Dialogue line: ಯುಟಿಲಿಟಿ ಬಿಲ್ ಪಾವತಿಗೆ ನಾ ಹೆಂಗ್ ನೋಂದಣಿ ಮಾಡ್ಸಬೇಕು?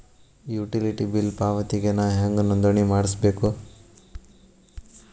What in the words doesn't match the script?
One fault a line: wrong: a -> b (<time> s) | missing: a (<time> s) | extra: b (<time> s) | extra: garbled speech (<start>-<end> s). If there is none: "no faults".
no faults